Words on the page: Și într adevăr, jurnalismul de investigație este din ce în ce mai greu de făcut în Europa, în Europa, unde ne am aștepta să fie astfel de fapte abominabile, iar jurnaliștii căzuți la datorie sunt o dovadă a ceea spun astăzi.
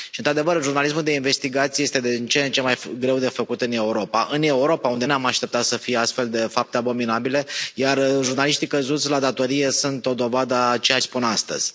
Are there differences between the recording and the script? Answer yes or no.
no